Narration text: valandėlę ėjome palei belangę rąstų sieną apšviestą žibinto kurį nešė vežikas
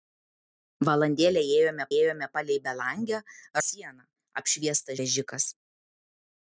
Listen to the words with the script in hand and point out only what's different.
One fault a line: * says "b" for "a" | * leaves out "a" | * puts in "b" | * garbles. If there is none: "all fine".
* puts in "ėjome"
* leaves out "rąstų"
* leaves out "žibinto kurį nešė"